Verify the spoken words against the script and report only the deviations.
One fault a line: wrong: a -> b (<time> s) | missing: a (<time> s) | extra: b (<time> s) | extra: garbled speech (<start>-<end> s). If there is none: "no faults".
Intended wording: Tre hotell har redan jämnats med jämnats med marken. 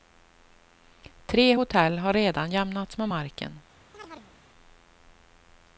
missing: jämnats med (3.1 s)